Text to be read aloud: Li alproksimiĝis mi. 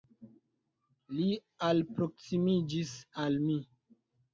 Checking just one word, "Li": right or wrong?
right